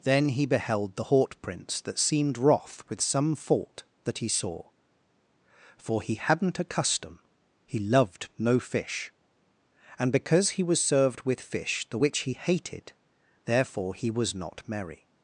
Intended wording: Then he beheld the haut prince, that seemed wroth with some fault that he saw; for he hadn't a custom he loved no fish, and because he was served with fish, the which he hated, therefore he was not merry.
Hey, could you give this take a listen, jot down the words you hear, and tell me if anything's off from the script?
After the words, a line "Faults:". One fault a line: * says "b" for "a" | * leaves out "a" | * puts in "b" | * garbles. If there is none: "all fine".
Then he beheld the haut prince, that seemed wroth with some fault that he saw; for he hadn't a custom he loved no fish, and because he was served with fish, the which he hated, therefore he was not merry.
Faults:
all fine